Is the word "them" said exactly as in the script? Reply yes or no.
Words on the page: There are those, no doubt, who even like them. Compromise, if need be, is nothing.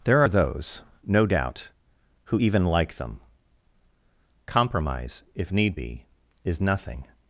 yes